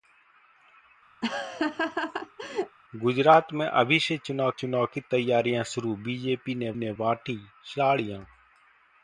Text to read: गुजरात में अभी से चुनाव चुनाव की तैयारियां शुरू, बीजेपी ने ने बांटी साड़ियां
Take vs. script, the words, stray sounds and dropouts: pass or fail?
fail